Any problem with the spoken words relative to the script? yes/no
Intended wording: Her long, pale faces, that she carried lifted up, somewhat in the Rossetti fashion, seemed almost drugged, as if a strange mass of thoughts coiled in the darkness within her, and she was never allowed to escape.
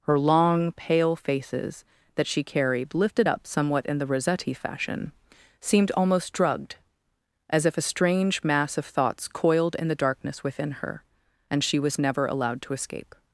no